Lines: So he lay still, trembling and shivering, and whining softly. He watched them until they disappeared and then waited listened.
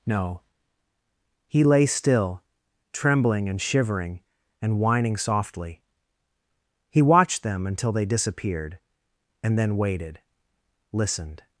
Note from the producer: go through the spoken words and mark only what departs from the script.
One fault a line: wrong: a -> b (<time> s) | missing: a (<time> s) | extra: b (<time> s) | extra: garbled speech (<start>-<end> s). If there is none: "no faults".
wrong: So -> No (0.1 s)